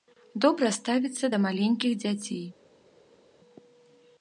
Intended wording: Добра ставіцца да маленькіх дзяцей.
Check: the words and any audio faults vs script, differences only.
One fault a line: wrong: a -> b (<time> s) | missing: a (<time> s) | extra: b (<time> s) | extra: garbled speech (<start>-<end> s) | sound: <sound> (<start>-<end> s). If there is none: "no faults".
no faults